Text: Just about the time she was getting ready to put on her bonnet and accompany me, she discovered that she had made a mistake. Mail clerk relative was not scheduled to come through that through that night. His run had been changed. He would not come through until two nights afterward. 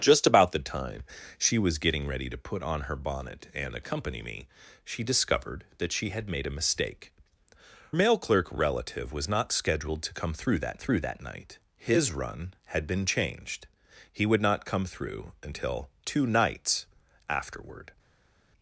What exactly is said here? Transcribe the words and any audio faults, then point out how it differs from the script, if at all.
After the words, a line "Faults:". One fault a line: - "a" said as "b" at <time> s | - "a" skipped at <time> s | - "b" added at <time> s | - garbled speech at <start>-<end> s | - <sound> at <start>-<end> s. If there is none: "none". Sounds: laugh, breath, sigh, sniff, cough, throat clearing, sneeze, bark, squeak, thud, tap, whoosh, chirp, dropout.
Just about the time she was getting ready to put on her bonnet and accompany me, she discovered that she had made a mistake. Mail clerk relative was not scheduled to come through that through that night. His run had been changed. He would not come through until two nights afterward.
Faults:
none